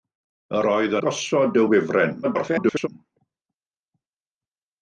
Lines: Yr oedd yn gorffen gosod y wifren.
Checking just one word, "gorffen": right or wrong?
wrong